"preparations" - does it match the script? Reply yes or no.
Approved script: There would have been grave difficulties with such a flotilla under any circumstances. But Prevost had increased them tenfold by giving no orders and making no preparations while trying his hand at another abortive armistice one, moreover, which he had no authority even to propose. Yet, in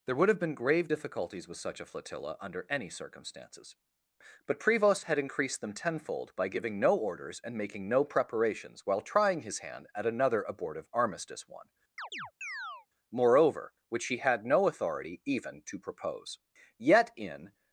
yes